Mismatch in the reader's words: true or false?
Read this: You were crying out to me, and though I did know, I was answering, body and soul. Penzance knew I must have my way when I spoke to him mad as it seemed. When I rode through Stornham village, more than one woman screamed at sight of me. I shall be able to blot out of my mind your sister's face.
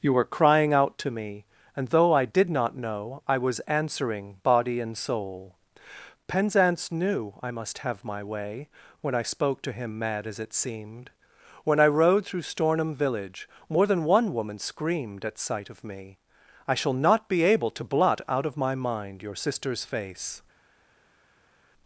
true